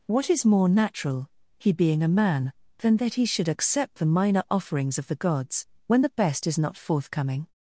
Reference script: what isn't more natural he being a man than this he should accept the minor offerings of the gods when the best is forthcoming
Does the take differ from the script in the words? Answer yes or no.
yes